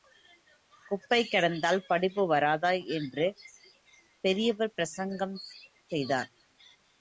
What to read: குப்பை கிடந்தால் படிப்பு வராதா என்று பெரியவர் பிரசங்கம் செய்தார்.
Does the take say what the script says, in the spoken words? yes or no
yes